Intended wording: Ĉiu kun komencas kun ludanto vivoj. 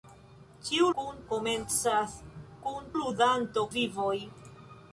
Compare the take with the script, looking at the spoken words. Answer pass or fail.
pass